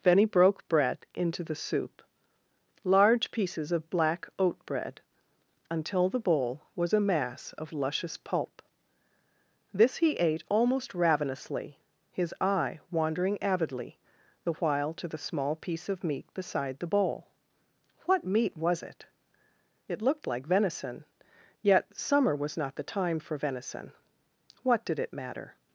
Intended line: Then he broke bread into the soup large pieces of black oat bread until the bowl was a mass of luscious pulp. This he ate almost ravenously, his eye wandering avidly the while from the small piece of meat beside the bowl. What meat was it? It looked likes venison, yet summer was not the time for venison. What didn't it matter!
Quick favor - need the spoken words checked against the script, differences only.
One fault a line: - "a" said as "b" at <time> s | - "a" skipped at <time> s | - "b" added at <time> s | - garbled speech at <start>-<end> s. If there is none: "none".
- "from" said as "to" at 14.9 s
- "likes" said as "like" at 20.3 s
- "didn't" said as "did" at 24.8 s